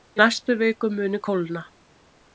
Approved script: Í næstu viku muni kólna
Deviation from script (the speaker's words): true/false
false